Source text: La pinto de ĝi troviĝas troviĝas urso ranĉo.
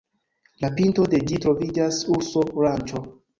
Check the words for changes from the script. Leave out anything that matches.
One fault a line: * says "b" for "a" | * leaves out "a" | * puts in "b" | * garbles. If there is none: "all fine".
* leaves out "troviĝas"